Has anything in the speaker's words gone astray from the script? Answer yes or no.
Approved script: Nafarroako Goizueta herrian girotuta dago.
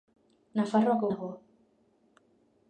yes